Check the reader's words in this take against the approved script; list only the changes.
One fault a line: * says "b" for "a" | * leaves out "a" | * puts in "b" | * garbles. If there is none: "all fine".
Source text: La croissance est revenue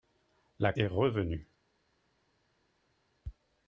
* leaves out "croissance"